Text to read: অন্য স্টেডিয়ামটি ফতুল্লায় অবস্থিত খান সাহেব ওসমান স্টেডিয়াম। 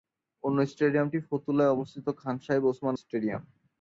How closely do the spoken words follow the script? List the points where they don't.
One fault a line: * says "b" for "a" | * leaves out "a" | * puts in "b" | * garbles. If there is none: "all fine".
all fine